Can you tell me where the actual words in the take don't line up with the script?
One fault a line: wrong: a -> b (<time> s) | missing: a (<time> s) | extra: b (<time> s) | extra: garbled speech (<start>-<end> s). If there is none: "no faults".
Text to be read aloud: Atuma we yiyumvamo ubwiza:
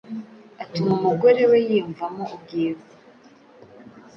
extra: umugore (1.0 s)